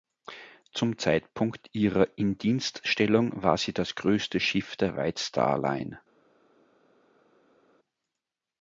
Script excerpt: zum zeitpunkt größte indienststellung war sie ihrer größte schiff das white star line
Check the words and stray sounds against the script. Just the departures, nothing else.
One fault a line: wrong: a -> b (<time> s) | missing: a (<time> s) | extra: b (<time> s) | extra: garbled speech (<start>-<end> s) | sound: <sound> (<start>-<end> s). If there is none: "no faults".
wrong: größte -> ihrer (1.7 s)
wrong: ihrer -> das (3.7 s)
wrong: das -> der (4.8 s)